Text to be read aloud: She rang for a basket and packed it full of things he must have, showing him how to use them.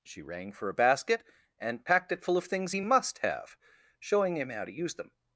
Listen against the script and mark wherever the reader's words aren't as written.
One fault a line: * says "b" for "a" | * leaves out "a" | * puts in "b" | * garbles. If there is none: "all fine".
all fine